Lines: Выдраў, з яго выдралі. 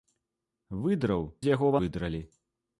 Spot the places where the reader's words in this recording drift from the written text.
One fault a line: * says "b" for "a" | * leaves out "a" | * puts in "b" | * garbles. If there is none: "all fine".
all fine